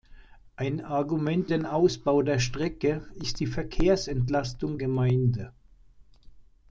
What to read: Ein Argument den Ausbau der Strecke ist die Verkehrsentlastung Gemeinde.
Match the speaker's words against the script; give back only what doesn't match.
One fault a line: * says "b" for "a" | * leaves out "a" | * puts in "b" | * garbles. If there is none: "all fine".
all fine